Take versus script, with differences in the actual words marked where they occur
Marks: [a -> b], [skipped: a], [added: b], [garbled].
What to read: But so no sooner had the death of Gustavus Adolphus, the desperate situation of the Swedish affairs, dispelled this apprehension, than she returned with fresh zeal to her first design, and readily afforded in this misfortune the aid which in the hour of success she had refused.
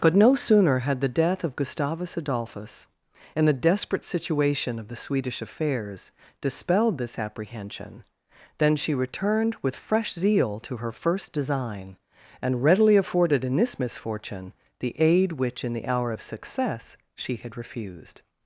But [skipped: so] no sooner had the death of Gustavus Adolphus, [added: and] the desperate situation of the Swedish affairs, dispelled this apprehension, than she returned with fresh zeal to her first design, and readily afforded in this misfortune the aid which in the hour of success she had refused.